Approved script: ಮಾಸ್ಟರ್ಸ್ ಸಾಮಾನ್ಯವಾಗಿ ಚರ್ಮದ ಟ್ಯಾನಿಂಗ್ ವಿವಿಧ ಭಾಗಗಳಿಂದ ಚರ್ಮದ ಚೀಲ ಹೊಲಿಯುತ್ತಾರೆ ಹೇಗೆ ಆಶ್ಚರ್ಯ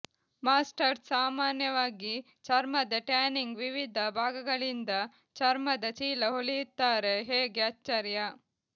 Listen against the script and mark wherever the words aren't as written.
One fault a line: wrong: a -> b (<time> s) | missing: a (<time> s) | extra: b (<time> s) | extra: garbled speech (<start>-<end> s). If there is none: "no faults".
no faults